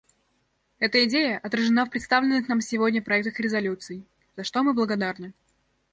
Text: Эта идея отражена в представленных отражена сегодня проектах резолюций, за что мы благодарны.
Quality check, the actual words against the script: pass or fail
fail